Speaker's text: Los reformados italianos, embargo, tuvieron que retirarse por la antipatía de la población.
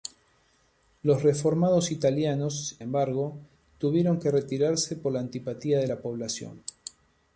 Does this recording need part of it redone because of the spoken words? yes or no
no